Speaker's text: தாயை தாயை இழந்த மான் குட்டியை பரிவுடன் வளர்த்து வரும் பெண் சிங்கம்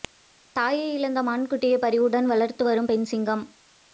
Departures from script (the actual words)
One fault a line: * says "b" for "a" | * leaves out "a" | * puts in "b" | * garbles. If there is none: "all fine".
* leaves out "தாயை"